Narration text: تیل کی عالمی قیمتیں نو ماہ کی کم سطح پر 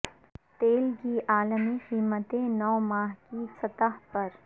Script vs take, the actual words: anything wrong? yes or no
yes